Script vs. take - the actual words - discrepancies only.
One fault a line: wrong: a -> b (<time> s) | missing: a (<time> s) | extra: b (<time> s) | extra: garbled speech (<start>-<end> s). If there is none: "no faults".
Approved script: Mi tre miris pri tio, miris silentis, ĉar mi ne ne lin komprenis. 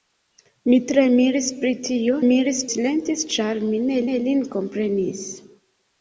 no faults